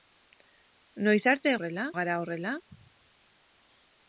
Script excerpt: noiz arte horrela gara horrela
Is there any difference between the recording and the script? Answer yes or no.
no